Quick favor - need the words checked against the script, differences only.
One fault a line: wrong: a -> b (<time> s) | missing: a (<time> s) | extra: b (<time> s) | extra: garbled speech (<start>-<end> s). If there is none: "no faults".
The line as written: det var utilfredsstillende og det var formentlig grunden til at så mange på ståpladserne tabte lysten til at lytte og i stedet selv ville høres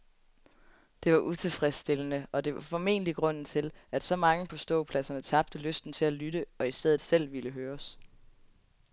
no faults